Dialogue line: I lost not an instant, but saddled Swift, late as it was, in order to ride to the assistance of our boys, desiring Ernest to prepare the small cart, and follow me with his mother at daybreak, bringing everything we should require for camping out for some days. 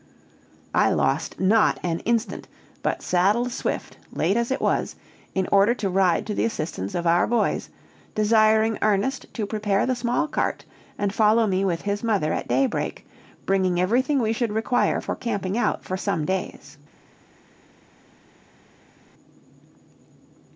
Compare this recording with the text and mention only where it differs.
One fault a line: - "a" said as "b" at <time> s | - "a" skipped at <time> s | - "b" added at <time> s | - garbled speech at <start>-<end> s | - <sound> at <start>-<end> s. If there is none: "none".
none